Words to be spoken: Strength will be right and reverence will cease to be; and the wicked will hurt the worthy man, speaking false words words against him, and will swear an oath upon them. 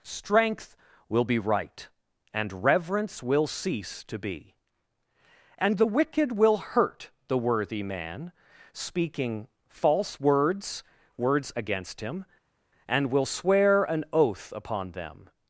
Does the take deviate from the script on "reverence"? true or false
false